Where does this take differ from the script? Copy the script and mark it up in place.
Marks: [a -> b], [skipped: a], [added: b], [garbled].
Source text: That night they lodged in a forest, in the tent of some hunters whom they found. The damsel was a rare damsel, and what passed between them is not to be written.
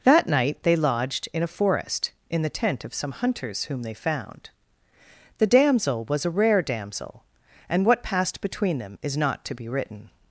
That night they lodged in a forest, in the tent of some hunters whom they found. The damsel was a rare damsel, and what passed between them is not to be written.